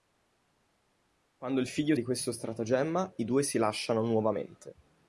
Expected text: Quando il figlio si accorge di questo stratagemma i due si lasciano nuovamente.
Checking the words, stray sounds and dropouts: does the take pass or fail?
fail